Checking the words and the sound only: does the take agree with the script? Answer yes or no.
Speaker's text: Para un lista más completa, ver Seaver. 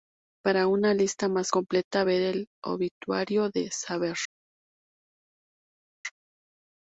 no